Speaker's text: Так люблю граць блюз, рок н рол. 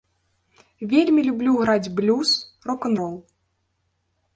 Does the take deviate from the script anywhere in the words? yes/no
yes